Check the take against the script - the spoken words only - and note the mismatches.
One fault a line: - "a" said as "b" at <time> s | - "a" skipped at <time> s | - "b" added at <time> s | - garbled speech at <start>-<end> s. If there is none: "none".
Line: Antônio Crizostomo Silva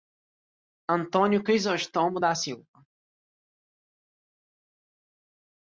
- "da" added at 2.2 s